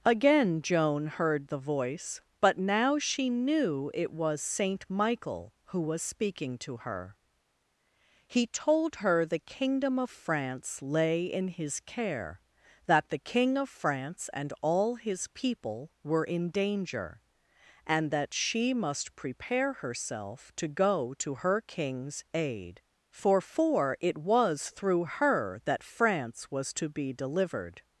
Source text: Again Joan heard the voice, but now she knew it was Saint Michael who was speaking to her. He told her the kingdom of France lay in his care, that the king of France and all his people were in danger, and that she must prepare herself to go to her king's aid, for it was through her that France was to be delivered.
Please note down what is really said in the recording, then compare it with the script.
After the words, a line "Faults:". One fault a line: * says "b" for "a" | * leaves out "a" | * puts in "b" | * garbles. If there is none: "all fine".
Again Joan heard the voice, but now she knew it was Saint Michael who was speaking to her. He told her the kingdom of France lay in his care, that the king of France and all his people were in danger, and that she must prepare herself to go to her king's aid, for for it was through her that France was to be delivered.
Faults:
* puts in "for"